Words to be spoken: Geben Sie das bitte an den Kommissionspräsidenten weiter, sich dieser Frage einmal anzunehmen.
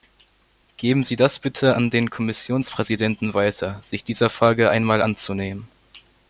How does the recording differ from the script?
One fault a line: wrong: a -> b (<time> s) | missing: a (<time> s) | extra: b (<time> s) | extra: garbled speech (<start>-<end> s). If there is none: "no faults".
no faults